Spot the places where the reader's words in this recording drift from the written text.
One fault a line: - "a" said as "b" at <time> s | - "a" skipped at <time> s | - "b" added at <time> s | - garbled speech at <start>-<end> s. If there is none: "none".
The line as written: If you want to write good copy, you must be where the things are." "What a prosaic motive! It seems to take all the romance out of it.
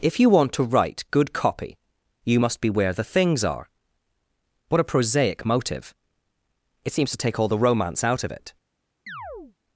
none